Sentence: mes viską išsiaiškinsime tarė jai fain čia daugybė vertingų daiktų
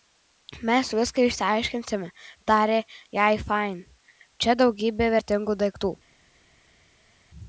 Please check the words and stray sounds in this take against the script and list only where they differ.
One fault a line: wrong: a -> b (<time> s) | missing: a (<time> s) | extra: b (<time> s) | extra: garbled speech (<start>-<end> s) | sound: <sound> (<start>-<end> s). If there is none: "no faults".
no faults